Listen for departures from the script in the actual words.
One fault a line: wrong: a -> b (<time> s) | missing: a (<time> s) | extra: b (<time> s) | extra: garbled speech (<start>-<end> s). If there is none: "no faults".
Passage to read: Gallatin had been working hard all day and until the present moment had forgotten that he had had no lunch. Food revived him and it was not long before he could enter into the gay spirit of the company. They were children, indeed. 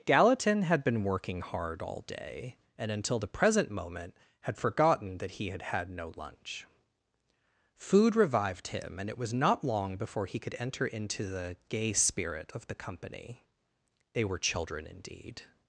no faults